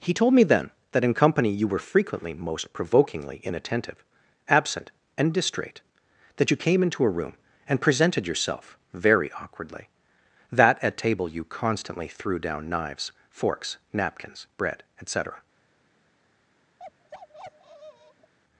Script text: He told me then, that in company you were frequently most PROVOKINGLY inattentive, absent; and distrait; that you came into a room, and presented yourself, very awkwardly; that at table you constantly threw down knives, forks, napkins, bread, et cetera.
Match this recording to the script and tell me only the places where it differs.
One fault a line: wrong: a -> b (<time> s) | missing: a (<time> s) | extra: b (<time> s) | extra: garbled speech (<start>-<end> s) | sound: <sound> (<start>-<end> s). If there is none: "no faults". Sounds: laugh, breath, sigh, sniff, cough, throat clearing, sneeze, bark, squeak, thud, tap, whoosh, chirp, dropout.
sound: bark (16.8-18.3 s)